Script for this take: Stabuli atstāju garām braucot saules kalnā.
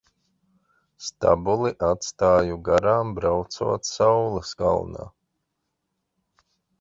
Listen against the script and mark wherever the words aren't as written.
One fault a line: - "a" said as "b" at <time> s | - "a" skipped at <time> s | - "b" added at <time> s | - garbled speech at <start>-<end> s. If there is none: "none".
none